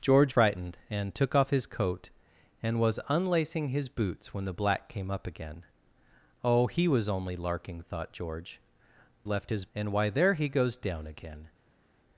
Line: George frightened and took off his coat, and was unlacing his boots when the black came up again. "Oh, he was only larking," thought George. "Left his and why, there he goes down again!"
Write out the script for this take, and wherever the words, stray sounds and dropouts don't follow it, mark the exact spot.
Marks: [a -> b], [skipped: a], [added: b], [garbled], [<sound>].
George frightened and took off his coat, and was unlacing his boots when the black came up again. "Oh, he was only larking," thought George. "Left his and why, there he goes down again!"